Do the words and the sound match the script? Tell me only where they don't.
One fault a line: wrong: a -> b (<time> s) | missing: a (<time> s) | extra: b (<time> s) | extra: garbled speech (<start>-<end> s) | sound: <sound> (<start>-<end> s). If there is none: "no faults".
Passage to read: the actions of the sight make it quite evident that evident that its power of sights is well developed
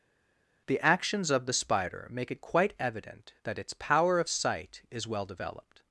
wrong: sight -> spider (1.5 s)
missing: evident that (3.6 s)
wrong: sights -> sight (4.3 s)